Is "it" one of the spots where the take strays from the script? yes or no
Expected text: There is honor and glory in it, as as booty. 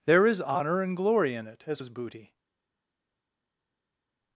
no